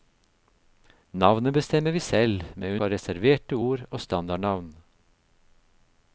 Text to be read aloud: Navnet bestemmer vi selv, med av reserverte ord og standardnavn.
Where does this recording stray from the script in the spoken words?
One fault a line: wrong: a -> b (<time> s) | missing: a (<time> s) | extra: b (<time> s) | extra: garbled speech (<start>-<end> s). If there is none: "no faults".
no faults